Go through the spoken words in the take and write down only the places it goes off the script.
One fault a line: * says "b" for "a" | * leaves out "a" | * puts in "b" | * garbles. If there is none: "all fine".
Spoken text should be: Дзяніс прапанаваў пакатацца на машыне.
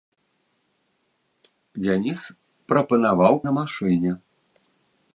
* leaves out "пакатацца"